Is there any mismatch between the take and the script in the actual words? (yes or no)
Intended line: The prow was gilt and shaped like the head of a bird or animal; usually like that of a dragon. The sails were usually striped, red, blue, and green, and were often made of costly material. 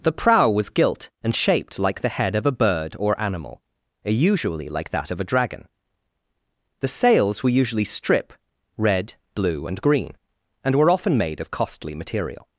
yes